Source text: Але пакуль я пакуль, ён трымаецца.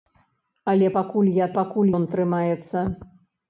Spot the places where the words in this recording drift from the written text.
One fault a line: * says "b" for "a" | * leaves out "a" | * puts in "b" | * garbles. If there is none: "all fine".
all fine